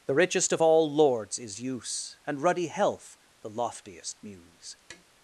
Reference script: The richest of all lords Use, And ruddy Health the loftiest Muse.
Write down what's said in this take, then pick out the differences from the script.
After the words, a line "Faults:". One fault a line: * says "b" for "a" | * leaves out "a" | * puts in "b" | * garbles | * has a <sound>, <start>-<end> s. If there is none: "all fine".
The richest of all lords is Use, And ruddy Health the loftiest Muse.
Faults:
* puts in "is"
* has a tap, 4.9-5.0 s